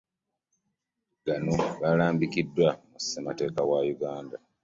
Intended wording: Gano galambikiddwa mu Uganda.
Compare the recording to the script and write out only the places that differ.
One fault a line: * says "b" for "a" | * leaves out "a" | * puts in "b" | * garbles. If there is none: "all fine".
* puts in "Ssemateeka wa"